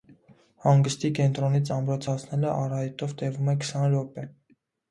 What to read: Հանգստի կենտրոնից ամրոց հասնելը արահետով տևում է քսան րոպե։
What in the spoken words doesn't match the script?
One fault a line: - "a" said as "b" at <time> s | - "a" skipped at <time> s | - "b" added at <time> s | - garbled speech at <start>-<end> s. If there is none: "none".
none